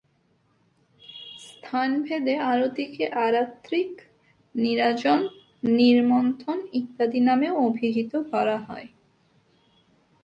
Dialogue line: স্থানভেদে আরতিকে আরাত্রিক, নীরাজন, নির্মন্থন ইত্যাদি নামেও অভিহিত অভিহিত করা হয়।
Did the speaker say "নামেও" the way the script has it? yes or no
yes